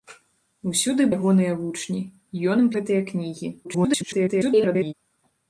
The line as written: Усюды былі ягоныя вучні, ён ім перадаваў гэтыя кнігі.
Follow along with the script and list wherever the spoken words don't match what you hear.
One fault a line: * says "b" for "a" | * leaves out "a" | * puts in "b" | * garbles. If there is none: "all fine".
* leaves out "былі"
* leaves out "перадаваў"
* garbles